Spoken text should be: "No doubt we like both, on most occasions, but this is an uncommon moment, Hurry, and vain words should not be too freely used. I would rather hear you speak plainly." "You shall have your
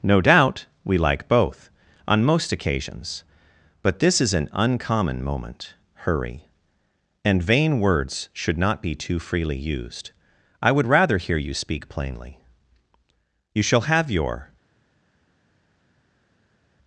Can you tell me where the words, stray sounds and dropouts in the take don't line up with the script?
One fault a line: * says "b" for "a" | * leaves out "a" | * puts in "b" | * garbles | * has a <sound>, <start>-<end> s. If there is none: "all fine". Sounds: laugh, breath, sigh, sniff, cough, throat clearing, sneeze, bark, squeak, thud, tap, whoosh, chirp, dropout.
all fine